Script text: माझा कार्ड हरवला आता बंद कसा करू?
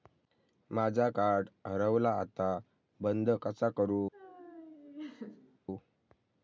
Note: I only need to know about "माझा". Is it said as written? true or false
true